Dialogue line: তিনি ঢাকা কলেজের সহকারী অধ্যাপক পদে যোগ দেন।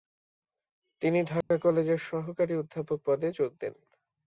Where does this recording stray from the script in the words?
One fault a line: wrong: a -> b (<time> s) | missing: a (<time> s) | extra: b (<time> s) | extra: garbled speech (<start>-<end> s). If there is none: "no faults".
no faults